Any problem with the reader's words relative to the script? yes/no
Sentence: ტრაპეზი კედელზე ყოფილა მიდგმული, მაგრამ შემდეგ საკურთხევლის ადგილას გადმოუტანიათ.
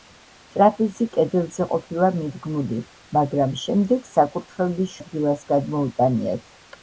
no